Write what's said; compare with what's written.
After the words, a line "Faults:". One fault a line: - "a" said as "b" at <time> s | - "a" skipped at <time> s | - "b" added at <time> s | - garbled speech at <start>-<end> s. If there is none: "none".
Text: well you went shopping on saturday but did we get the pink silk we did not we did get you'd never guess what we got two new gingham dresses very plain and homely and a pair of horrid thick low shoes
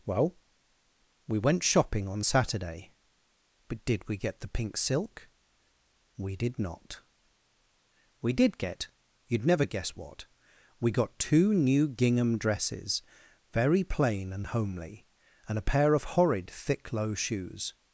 well we went shopping on saturday but did we get the pink silk we did not we did get you'd never guess what we got two new gingham dresses very plain and homely and a pair of horrid thick low shoes
Faults:
- "you" said as "we" at 1.3 s